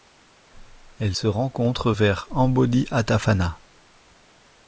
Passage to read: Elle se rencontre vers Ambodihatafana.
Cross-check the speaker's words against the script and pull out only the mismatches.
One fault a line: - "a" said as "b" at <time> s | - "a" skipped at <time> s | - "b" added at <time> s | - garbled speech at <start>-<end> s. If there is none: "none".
none